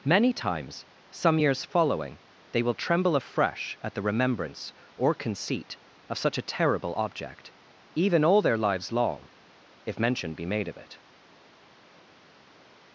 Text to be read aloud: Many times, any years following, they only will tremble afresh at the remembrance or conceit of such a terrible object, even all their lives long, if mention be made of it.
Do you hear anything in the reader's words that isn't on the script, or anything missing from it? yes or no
yes